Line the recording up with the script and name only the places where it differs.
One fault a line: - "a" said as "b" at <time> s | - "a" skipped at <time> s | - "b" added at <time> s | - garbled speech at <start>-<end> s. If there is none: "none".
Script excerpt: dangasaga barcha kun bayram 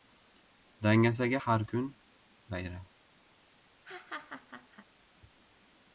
- "barcha" said as "har" at 1.3 s